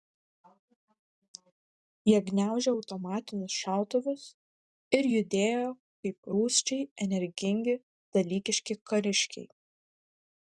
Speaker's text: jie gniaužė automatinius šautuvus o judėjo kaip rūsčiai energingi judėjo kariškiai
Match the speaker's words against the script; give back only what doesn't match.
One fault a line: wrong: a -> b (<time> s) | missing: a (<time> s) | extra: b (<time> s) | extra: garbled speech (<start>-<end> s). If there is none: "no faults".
wrong: o -> ir (5.0 s)
wrong: judėjo -> dalykiški (8.2 s)